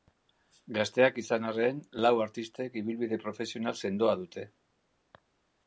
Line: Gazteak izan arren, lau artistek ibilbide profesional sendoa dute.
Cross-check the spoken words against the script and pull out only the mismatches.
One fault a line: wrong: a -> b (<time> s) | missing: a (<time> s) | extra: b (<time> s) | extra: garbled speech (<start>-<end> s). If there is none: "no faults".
no faults